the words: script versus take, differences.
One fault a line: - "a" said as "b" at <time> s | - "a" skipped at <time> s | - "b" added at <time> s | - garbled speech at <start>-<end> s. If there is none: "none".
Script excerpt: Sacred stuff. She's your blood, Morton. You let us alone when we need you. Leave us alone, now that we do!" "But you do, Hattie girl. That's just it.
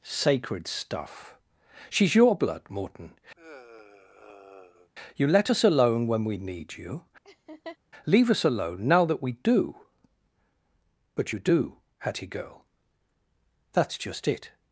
none